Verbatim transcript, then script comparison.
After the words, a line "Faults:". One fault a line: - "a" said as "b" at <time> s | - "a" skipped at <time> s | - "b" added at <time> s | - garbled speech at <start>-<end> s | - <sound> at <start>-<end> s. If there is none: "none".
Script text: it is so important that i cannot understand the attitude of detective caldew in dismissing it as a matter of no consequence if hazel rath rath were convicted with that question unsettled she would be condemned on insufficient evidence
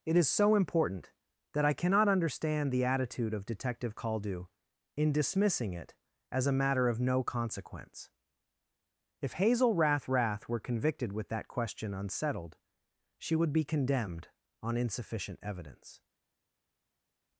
it is so important that i cannot understand the attitude of detective caldew in dismissing it as a matter of no consequence if hazel rath rath were convicted with that question unsettled she would be condemned on insufficient evidence
Faults:
none